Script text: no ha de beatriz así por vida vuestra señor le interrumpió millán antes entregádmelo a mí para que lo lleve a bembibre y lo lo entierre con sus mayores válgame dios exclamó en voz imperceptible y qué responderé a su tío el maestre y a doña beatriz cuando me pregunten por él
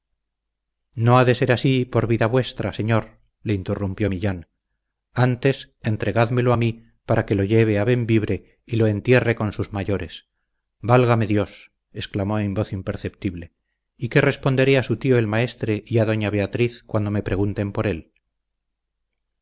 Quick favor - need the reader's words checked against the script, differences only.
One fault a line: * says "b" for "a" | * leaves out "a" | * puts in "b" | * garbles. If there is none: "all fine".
* says "ser" for "beatriz"
* leaves out "lo"